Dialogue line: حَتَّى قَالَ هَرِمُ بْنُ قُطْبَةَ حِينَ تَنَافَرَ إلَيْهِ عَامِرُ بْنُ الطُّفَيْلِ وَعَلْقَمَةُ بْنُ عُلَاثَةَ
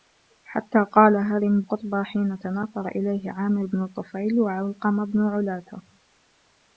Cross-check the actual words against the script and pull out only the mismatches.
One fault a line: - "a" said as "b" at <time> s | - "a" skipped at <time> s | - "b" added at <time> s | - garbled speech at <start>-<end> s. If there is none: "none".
- "بْنُ" skipped at 1.6 s